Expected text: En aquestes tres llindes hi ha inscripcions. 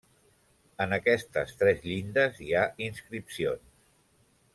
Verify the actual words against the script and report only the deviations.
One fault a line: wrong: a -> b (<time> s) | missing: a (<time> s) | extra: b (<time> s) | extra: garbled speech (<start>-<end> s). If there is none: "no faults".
no faults